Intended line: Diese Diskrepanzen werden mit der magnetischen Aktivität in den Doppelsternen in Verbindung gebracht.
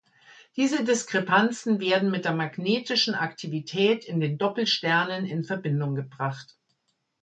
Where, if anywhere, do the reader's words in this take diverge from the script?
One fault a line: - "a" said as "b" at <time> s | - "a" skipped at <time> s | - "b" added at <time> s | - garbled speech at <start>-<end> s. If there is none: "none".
none